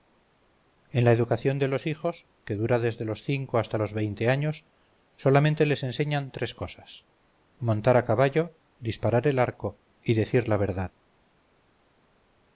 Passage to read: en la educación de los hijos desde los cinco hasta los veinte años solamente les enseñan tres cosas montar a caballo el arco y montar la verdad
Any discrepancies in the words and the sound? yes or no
yes